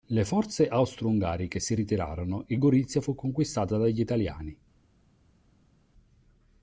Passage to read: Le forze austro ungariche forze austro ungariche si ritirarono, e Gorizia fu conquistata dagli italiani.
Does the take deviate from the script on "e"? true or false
false